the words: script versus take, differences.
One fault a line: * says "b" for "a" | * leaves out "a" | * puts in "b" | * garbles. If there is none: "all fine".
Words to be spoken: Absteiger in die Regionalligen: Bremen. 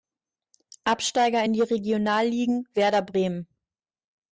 * puts in "Werder"